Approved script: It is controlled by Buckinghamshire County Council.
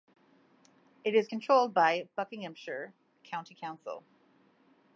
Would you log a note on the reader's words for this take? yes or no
no